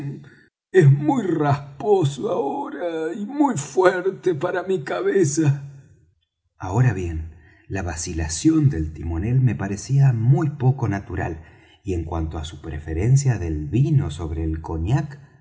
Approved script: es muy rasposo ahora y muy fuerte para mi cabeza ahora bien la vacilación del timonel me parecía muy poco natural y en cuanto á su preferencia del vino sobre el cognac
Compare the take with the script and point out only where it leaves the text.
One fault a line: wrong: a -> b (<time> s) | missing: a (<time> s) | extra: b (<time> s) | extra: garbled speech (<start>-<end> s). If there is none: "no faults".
no faults